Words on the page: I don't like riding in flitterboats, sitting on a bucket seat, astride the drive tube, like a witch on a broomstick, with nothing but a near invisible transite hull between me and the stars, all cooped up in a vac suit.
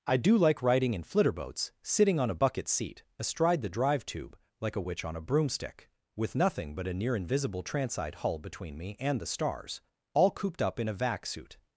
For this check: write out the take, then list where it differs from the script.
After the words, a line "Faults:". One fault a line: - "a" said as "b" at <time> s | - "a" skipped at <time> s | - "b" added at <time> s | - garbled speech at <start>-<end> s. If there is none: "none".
I do like riding in flitterboats, sitting on a bucket seat, astride the drive tube, like a witch on a broomstick, with nothing but a near invisible transite hull between me and the stars, all cooped up in a vac suit.
Faults:
- "don't" said as "do" at 0.2 s